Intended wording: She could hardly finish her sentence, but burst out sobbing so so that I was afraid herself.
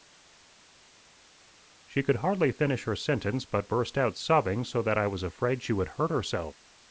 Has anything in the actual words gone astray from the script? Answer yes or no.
yes